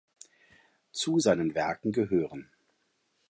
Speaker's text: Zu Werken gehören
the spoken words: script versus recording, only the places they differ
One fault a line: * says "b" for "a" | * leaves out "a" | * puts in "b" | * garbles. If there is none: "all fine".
* puts in "seinen"